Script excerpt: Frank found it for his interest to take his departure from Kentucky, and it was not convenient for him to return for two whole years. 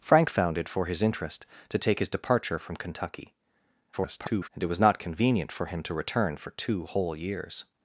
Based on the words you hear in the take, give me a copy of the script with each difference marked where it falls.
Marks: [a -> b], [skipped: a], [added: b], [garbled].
Frank found it for his interest to take his departure from Kentucky, [garbled] and it was not convenient for him to return for two whole years.